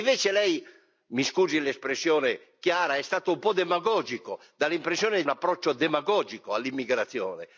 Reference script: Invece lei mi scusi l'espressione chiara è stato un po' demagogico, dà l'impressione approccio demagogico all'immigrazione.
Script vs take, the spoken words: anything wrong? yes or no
no